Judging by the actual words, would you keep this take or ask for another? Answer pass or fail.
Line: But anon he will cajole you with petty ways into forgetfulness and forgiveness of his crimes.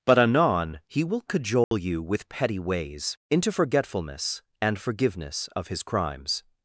pass